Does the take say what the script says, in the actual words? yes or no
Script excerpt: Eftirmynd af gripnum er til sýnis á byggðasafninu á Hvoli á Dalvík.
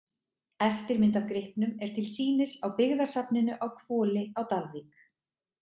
yes